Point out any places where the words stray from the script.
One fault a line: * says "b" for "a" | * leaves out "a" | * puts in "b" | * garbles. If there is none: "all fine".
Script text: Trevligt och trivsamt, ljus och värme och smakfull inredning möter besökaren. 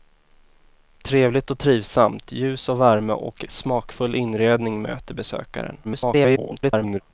* garbles